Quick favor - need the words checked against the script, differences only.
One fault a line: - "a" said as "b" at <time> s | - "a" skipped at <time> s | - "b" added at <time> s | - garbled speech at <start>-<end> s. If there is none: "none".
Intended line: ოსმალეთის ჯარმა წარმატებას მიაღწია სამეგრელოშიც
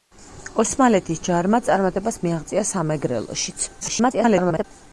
- garbled speech at 3.8-4.6 s